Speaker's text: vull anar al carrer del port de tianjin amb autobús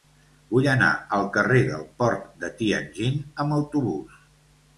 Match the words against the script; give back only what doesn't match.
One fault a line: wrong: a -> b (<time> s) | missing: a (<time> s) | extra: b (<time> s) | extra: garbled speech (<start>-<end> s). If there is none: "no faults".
no faults